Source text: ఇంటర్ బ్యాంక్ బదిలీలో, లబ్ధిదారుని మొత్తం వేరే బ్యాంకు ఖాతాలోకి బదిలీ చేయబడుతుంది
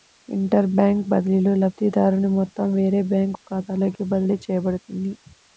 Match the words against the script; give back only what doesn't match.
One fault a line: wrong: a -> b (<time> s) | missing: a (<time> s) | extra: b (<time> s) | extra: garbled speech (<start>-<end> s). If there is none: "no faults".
no faults